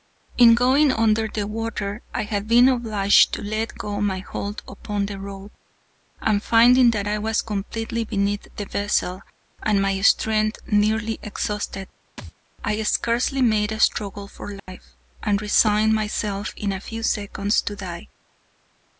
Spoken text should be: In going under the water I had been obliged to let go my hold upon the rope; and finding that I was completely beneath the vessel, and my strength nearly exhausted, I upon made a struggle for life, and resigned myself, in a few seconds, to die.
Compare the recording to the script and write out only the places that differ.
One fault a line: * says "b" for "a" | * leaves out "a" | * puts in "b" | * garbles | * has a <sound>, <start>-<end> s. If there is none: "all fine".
* has a thud, 12.2-12.3 s
* says "scarcely" for "upon"
* has a dropout, 14.6-14.7 s